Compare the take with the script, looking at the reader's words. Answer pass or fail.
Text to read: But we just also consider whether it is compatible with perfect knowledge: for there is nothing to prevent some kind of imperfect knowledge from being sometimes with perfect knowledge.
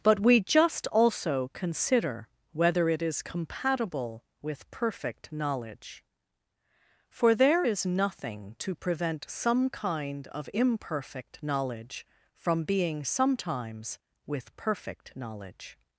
pass